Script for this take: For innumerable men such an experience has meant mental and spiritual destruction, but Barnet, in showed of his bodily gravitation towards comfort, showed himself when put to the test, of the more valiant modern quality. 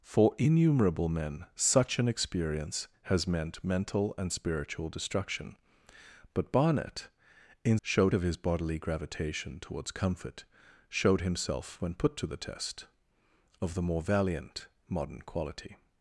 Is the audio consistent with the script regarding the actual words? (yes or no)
yes